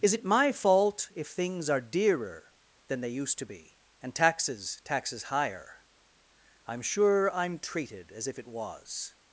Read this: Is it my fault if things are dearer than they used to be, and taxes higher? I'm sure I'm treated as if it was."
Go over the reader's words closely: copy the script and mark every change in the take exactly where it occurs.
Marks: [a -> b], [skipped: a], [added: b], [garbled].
Is it my fault if things are dearer than they used to be, and taxes [added: taxes] higher? I'm sure I'm treated as if it was."